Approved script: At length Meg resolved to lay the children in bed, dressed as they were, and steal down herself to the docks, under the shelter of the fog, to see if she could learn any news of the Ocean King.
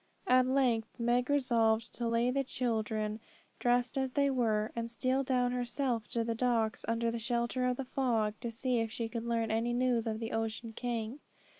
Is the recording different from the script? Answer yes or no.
yes